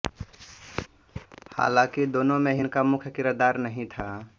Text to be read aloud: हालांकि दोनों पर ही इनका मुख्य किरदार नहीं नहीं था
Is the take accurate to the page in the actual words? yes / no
no